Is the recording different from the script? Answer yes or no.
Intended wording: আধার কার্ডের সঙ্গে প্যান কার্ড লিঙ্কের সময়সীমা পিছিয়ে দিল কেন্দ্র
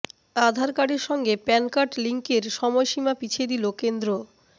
no